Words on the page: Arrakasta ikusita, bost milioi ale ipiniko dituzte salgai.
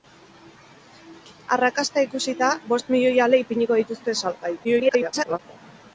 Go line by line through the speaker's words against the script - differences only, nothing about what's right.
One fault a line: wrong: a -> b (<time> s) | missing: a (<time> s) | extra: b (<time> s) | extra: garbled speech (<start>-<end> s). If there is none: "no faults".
extra: garbled speech (4.6-5.4 s)